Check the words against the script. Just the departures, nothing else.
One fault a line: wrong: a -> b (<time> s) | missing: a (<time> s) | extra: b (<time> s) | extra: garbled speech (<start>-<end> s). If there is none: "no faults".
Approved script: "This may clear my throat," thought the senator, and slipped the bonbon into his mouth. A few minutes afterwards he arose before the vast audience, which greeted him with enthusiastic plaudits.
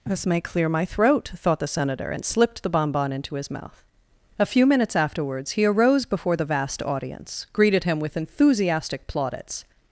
missing: which (7.5 s)